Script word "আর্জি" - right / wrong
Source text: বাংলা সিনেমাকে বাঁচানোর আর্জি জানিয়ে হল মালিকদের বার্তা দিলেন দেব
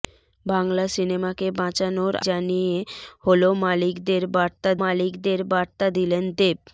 wrong